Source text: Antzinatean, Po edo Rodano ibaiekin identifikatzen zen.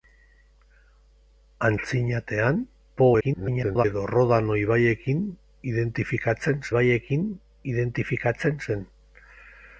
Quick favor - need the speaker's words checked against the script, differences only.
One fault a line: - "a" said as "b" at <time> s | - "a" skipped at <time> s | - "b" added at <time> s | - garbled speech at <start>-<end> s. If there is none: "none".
- garbled speech at 3.2-3.9 s
- "ibaiekin identifikatzen" added at 6.7 s